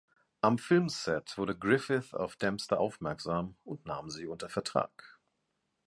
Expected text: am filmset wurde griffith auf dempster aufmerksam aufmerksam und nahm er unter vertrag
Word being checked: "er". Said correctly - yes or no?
no